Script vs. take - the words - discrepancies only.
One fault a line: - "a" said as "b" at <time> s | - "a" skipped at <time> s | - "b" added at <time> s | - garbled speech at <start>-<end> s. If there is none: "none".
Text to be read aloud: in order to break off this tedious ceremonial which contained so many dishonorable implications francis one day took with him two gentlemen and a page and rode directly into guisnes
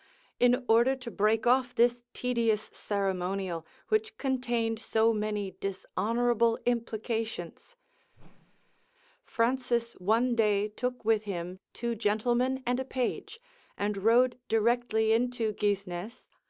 none